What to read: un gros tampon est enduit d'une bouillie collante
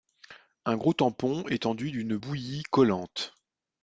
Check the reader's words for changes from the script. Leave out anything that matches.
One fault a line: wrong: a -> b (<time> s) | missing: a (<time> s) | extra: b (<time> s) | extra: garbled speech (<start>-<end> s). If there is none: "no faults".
no faults